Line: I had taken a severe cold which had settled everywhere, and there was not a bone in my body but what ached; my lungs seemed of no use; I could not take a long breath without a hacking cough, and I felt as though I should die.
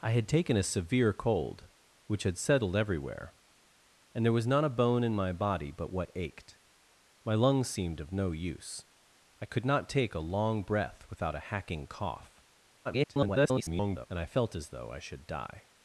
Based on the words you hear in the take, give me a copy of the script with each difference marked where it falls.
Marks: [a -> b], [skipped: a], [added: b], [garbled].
I had taken a severe cold which had settled everywhere, and there was not a bone in my body but what ached; my lungs seemed of no use; I could not take a long breath without a hacking cough, [garbled] and I felt as though I should die.